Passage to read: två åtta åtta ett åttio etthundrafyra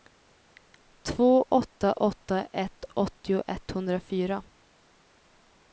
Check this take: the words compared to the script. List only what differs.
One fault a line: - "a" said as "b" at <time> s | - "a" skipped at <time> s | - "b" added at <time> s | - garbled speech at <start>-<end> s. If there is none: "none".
none